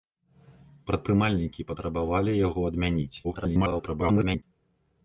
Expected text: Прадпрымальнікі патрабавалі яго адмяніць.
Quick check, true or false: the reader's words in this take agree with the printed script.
false